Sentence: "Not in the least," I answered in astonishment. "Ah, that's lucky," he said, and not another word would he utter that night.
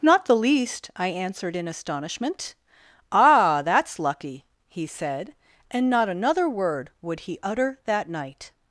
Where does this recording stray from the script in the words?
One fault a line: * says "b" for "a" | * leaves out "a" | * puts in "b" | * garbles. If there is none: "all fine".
* leaves out "in"